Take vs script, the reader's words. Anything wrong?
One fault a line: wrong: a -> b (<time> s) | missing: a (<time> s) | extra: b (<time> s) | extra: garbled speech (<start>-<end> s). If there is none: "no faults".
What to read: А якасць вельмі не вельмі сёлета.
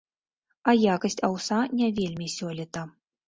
wrong: вельмі -> аўса (1.3 s)